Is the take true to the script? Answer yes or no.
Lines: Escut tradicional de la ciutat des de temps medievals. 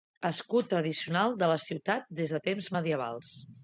yes